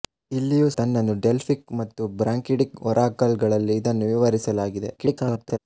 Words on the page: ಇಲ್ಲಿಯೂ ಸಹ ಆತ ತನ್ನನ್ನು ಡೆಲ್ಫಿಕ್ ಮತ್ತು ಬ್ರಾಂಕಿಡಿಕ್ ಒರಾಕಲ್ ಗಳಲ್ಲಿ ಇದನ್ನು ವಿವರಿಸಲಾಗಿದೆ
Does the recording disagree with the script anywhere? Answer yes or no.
yes